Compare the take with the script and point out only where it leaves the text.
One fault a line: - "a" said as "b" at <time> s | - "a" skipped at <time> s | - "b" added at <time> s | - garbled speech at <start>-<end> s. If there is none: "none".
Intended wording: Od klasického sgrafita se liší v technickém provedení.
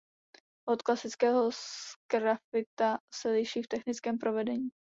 none